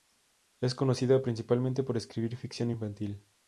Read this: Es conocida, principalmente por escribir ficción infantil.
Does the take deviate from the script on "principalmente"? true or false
false